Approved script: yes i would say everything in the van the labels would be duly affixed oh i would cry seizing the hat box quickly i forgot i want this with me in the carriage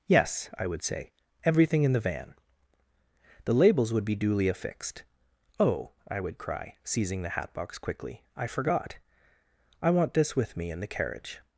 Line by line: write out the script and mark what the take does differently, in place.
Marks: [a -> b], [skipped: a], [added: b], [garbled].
yes i would say everything in the van the labels would be duly affixed oh i would cry seizing the hat box quickly i forgot i want this with me in the carriage